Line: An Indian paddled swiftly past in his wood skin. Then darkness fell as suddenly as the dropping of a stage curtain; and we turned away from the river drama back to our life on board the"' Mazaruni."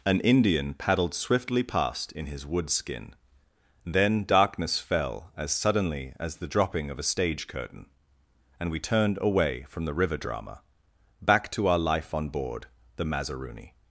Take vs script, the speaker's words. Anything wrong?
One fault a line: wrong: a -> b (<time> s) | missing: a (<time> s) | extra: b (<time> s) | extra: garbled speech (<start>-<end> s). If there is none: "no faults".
no faults